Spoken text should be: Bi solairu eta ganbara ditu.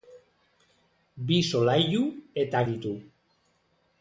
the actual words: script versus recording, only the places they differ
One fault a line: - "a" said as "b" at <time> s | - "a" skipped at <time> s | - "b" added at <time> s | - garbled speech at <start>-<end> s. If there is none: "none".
- "ganbara" skipped at 2.6 s